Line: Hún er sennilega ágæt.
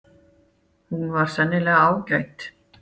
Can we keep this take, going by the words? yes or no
no